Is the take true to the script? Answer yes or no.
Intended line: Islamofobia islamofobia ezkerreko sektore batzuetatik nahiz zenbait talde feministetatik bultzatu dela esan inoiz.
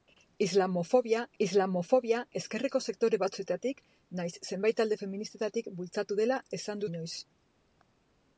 yes